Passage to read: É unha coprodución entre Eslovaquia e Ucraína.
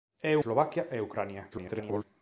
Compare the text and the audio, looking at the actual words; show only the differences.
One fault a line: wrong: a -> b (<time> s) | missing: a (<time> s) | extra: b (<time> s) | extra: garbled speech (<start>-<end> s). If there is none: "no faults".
missing: unha coprodución entre (0.3 s)
extra: garbled speech (1.5-2.0 s)